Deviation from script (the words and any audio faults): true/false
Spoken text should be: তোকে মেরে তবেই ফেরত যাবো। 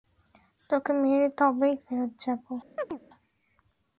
true